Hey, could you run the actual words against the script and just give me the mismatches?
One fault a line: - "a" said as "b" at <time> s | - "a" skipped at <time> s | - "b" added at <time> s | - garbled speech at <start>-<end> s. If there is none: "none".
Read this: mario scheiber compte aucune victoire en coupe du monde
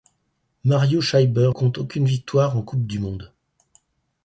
none